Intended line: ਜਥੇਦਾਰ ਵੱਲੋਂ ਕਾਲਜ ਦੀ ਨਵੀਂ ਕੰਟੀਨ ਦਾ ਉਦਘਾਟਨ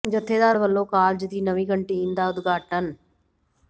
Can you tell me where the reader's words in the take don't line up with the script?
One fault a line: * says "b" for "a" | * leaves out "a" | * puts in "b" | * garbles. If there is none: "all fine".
all fine